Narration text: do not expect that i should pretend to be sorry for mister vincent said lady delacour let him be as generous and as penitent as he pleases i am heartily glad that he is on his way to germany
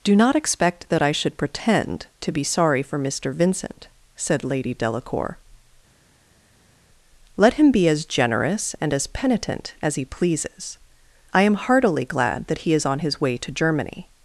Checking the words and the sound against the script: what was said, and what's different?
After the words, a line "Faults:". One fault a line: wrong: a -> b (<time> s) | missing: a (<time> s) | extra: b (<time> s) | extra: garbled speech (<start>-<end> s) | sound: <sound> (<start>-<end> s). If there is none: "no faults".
do not expect that i should pretend to be sorry for mister vincent said lady delacour let him be as generous and as penitent as he pleases i am heartily glad that he is on his way to germany
Faults:
no faults